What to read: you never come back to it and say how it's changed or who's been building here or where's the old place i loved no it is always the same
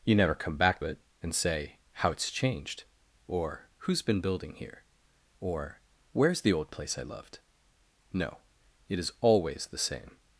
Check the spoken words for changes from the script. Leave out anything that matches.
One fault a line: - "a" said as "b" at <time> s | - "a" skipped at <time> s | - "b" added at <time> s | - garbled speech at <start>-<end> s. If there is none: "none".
- "to" skipped at 0.8 s